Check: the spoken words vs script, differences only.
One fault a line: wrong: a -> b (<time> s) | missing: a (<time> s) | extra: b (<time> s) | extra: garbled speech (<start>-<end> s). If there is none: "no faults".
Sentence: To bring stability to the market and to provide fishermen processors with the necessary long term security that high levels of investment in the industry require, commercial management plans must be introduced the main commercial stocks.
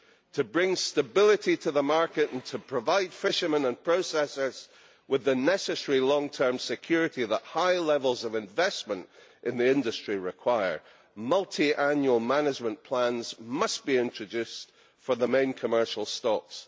extra: and (3.6 s)
wrong: commercial -> multiannual (11.2 s)
extra: for (15.0 s)